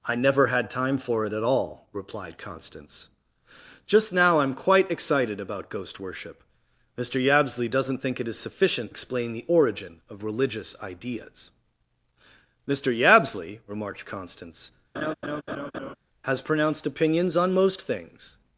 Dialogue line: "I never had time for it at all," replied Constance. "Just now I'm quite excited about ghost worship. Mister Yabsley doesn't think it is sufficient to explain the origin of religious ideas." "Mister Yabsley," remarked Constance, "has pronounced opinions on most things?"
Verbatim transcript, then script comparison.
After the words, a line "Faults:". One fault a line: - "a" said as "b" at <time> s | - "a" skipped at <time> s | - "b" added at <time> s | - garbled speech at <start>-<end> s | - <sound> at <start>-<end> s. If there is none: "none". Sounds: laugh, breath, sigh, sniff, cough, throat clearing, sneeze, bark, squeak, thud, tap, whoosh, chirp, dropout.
"I never had time for it at all," replied Constance. "Just now I'm quite excited about ghost worship. Mister Yabsley doesn't think it is sufficient explain the origin of religious ideas." "Mister Yabsley," remarked Constance, "has pronounced opinions on most things?"
Faults:
- "to" skipped at 8.9 s
- laugh at 14.9-16.0 s